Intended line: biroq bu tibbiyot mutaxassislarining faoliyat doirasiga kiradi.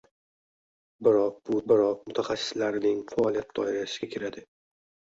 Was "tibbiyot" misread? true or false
true